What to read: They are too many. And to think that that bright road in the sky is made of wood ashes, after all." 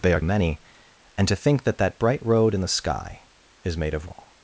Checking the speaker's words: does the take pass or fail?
fail